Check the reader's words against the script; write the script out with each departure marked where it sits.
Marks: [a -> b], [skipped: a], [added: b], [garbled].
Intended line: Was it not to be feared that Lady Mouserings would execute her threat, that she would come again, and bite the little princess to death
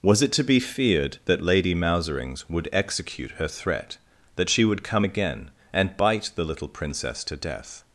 Was it [skipped: not] to be feared that Lady Mouserings would execute her threat, that she would come again, and bite the little princess to death